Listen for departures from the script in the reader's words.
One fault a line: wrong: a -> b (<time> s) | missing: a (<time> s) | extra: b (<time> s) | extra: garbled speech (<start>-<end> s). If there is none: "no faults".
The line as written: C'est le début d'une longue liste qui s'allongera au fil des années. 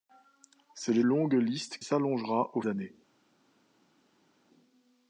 missing: début d'une (1.0 s)
missing: qui (1.8 s)
missing: fil des (2.6 s)